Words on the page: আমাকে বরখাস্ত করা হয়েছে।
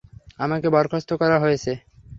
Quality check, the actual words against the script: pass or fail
pass